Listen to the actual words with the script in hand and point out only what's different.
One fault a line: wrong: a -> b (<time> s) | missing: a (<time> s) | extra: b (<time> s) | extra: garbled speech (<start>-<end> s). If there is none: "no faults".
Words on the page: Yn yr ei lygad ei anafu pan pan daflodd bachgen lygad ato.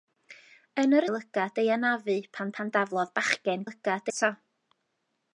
no faults